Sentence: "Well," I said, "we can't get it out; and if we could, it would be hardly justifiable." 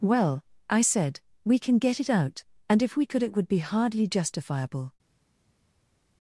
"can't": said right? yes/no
no